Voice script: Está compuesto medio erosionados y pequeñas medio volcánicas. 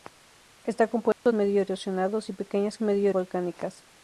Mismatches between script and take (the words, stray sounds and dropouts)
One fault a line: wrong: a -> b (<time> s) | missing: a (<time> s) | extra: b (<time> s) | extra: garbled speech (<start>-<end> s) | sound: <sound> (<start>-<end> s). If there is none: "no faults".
sound: dropout (1.1-1.3 s)